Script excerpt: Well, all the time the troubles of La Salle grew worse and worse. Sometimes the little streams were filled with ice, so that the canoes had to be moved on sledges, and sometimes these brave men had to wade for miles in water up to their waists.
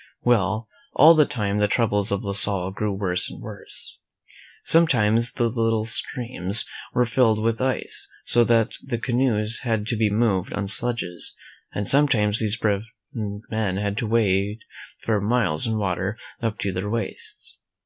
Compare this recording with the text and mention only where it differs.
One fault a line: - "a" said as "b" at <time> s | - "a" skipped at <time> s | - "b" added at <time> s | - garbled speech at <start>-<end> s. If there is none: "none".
none